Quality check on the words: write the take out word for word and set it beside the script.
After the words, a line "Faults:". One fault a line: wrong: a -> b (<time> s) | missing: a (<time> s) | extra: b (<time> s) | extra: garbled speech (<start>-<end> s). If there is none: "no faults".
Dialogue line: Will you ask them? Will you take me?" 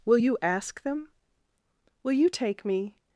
Will you ask them? Will you take me?"
Faults:
no faults